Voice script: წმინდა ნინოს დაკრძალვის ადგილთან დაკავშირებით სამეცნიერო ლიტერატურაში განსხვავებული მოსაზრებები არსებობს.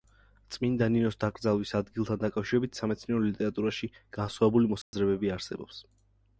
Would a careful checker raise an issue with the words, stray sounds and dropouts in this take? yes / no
yes